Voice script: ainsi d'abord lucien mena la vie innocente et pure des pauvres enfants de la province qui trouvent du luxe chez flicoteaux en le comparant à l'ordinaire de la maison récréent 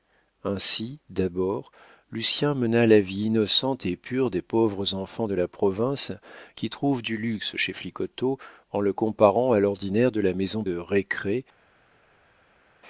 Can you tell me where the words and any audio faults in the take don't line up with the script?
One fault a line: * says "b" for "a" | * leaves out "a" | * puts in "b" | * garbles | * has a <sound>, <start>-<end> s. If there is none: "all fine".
all fine